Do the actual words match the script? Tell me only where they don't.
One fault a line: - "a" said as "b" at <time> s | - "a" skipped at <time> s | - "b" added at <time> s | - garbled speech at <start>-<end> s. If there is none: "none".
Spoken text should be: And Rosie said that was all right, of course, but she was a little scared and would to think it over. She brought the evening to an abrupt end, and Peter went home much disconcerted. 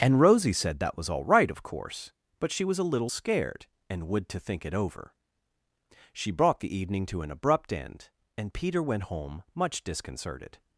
none